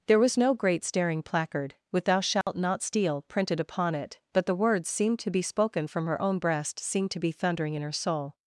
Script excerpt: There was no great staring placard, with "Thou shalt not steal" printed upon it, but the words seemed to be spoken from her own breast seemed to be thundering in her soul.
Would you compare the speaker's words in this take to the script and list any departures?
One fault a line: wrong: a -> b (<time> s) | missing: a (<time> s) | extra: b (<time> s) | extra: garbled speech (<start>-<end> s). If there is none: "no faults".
no faults